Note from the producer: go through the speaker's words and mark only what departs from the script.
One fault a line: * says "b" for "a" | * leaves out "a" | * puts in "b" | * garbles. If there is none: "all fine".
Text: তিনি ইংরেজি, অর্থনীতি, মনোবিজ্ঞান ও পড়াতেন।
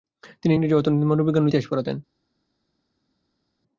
* puts in "ইতিহাস"